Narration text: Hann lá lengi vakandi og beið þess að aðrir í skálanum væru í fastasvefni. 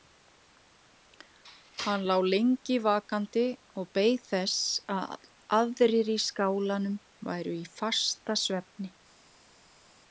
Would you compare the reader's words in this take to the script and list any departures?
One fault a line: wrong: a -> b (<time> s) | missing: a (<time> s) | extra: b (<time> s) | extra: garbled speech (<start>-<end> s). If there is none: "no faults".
no faults